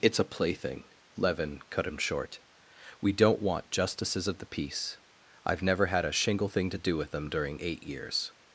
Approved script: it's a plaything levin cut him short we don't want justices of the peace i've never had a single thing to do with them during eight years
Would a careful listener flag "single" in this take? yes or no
yes